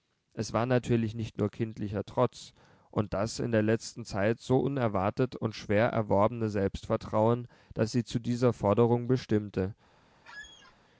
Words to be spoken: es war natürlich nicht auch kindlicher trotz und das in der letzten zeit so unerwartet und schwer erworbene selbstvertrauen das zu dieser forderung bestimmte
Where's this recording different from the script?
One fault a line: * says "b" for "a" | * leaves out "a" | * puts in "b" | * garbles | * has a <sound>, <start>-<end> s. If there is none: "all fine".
* says "nur" for "auch"
* puts in "sie"
* has a squeak, 10.2-10.8 s